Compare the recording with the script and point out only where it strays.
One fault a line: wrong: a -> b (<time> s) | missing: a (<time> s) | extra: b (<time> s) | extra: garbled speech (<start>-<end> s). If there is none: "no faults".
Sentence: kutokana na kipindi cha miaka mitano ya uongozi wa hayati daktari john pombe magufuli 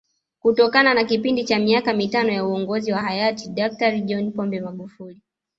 no faults